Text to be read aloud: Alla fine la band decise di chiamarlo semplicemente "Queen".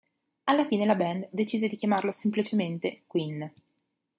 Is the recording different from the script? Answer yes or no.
no